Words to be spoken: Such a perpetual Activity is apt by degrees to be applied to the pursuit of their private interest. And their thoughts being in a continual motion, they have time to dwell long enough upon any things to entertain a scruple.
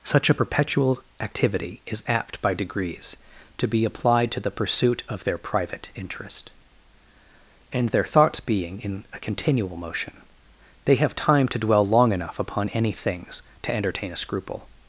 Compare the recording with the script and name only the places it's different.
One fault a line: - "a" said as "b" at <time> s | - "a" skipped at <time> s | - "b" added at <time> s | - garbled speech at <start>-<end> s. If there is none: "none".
none